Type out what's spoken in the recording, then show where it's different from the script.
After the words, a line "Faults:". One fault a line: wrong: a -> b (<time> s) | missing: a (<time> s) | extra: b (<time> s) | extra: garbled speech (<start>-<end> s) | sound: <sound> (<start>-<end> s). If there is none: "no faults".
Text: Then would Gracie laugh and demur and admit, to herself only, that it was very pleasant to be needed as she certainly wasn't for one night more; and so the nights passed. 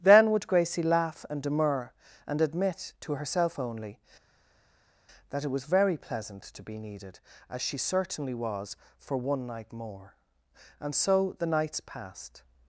Then would Gracie laugh and demur and admit, to herself only, that it was very pleasant to be needed as she certainly was for one night more; and so the nights passed.
Faults:
wrong: wasn't -> was (8.3 s)